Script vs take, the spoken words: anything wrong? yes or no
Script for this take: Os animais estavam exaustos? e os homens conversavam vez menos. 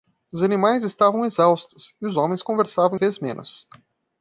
no